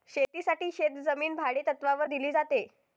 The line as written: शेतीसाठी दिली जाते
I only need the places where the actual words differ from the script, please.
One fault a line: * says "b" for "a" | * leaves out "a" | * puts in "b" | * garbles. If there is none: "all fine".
* puts in "शेतजमीन भाडेतत्त्वावर"